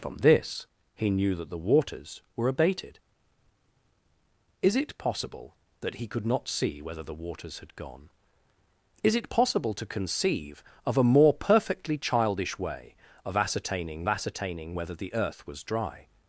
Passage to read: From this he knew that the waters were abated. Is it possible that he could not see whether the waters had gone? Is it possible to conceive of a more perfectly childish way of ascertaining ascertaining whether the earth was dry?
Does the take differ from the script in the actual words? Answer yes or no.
no